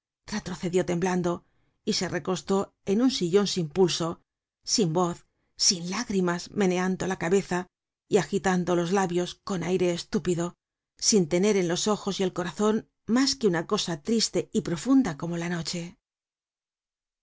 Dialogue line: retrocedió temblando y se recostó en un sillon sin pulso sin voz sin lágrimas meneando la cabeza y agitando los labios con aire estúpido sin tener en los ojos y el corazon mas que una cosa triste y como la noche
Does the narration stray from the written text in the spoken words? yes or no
yes